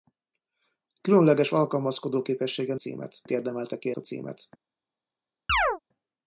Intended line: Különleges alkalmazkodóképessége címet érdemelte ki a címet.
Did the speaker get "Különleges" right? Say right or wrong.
right